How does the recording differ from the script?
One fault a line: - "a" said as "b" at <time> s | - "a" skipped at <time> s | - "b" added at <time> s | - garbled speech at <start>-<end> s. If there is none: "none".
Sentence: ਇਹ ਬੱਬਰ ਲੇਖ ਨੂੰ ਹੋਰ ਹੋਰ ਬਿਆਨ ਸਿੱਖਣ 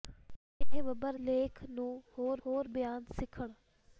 none